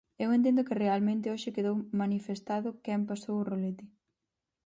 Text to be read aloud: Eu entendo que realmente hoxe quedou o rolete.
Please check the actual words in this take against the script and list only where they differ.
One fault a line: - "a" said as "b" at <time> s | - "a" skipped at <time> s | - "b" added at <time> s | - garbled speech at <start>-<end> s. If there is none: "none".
- "manifestado quen pasou" added at 2.0 s